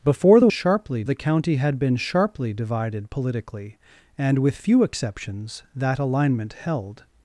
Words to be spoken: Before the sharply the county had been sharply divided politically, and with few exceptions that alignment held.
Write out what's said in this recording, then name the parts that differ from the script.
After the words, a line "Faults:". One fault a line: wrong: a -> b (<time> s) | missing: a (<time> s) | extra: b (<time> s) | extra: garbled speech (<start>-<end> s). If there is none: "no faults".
Before the sharply the county had been sharply divided politically, and with few exceptions that alignment held.
Faults:
no faults